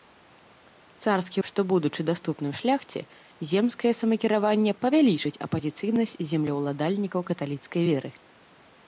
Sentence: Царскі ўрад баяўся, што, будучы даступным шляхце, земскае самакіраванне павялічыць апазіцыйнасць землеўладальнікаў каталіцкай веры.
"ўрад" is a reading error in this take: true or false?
true